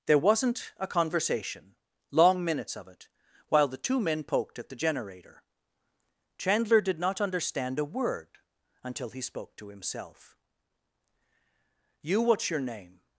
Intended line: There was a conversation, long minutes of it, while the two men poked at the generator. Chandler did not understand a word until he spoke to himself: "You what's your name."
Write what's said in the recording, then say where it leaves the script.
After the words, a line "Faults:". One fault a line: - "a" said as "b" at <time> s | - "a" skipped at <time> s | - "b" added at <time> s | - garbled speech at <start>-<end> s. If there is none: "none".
There wasn't a conversation, long minutes of it, while the two men poked at the generator. Chandler did not understand a word until he spoke to himself: "You what's your name."
Faults:
- "was" said as "wasn't" at 0.2 s